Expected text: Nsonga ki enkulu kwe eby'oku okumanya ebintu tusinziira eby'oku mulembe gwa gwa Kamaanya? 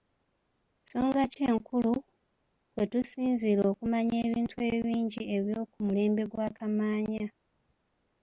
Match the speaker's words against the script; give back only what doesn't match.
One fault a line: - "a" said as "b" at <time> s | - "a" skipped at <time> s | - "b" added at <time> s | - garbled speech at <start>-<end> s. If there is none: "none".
- "eby'oku" said as "tusinziira" at 2.9 s
- "tusinziira" said as "ebingi" at 4.7 s
- "gwa" skipped at 6.5 s